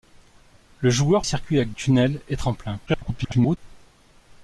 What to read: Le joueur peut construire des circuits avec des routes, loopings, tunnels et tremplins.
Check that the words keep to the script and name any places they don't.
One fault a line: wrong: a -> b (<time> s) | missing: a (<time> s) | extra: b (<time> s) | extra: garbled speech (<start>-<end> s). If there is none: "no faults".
missing: peut construire des (1.2 s)
missing: des routes loopings (1.7 s)
extra: garbled speech (2.9-3.6 s)